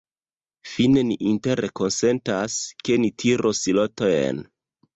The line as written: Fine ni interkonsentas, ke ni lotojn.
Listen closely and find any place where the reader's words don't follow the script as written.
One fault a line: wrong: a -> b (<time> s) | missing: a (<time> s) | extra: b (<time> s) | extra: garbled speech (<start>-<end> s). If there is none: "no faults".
extra: tiros (3.2 s)